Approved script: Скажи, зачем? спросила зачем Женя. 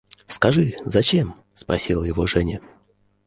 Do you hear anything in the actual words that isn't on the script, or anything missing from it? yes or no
yes